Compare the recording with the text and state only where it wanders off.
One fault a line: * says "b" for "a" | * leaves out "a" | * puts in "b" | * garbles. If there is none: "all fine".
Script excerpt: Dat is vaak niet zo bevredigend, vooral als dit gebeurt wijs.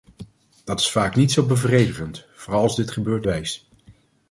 all fine